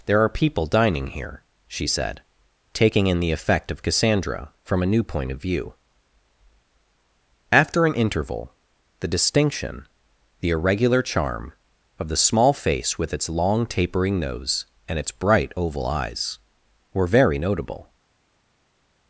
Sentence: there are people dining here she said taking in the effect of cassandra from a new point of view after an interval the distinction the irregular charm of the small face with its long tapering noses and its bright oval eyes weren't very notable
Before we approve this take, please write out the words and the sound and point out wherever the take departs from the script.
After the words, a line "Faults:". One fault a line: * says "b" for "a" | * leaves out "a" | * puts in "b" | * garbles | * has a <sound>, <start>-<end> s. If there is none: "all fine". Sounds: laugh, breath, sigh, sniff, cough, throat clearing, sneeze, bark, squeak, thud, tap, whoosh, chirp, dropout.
there are people dining here she said taking in the effect of cassandra from a new point of view after an interval the distinction the irregular charm of the small face with its long tapering nose and its bright oval eyes were very notable
Faults:
* says "nose" for "noses"
* says "were" for "weren't"